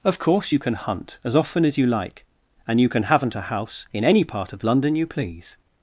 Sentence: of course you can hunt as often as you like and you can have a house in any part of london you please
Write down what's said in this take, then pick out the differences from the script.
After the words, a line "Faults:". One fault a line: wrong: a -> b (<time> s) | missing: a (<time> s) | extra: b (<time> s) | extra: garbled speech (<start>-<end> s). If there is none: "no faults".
of course you can hunt as often as you like and you can haven't a house in any part of london you please
Faults:
wrong: have -> haven't (3.0 s)